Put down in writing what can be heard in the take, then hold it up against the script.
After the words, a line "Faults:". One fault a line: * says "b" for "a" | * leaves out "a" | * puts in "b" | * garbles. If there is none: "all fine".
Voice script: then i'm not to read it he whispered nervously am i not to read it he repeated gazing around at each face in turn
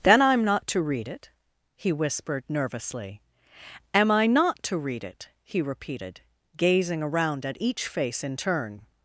then i'm not to read it he whispered nervously am i not to read it he repeated gazing around at each face in turn
Faults:
all fine